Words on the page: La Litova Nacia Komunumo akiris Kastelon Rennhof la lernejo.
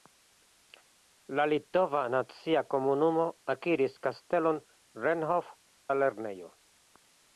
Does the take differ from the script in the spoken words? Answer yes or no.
no